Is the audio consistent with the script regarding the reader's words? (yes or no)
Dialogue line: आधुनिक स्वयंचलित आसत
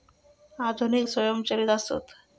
yes